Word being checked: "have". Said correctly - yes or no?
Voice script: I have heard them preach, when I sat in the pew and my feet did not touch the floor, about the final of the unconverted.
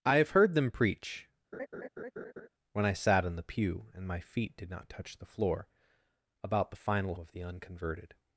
yes